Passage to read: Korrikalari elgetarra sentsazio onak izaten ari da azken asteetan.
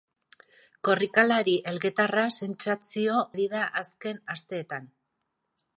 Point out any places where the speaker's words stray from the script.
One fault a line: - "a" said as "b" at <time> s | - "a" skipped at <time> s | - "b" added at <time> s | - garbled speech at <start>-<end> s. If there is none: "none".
- "onak izaten" skipped at 3.2 s